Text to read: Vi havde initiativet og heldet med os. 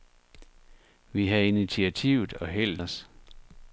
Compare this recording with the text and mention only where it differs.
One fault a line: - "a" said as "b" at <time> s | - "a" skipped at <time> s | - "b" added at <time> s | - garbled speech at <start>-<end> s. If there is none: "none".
- "med" skipped at 2.8 s